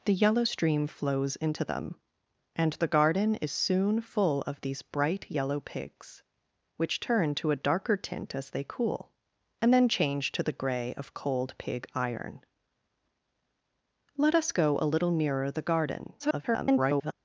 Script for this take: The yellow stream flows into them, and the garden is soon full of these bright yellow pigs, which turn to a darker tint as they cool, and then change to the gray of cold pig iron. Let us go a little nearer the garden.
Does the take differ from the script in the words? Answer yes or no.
yes